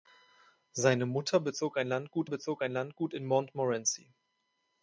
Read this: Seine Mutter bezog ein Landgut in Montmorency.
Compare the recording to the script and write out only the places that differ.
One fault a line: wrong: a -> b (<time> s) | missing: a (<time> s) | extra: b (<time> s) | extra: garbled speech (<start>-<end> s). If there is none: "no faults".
extra: bezog ein Landgut (2.2 s)